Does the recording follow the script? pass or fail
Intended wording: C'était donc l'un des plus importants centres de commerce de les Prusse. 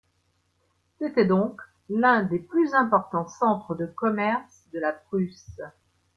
fail